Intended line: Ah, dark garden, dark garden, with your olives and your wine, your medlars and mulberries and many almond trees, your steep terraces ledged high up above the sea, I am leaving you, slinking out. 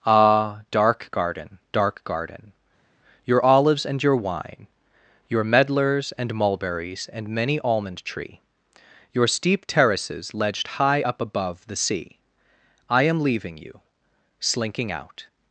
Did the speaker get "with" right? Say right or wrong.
wrong